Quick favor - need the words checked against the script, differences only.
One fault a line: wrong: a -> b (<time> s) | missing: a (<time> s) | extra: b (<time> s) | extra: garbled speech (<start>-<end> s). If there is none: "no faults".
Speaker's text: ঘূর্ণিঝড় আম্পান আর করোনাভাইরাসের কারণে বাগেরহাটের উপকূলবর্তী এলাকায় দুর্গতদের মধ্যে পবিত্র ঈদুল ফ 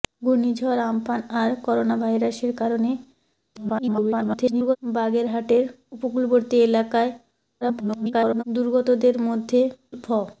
extra: garbled speech (3.5-4.8 s)
extra: garbled speech (7.6-8.4 s)
missing: পবিত্র ঈদুল (9.6 s)